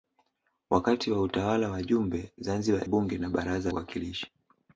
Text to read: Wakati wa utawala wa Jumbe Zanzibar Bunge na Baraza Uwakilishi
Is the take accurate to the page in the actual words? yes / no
yes